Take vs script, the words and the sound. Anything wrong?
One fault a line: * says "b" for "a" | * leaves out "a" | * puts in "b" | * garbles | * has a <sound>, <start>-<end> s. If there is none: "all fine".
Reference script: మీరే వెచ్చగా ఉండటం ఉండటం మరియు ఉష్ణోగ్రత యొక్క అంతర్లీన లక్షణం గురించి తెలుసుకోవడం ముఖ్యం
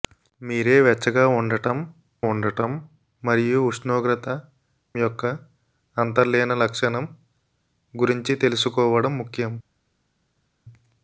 all fine